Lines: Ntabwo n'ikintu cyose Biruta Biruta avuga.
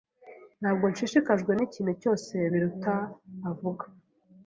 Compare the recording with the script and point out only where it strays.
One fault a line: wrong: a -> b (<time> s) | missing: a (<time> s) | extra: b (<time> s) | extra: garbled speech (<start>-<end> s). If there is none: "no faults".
extra: nshishikajwe (0.9 s)
missing: Biruta (2.9 s)